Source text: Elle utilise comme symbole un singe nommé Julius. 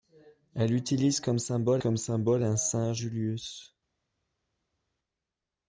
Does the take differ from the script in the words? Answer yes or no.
yes